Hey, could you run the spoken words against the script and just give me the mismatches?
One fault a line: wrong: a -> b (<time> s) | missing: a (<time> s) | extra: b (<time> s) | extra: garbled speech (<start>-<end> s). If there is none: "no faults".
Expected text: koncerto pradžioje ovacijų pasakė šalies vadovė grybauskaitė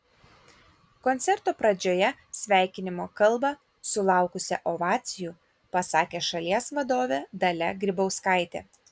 extra: sveikinimo kalbą sulaukusią (2.4 s)
extra: dalia (7.5 s)